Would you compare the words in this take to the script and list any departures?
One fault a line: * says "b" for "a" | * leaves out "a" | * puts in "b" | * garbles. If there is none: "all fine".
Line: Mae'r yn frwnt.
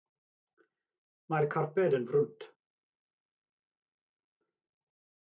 * puts in "carped"